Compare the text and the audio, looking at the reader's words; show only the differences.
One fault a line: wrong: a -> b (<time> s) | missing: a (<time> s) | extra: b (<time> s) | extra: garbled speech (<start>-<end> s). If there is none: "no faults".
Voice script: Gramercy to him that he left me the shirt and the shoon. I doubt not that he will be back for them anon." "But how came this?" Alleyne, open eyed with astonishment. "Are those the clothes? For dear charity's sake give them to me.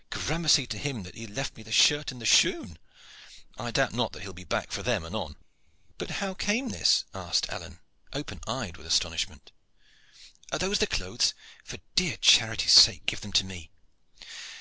extra: asked (7.1 s)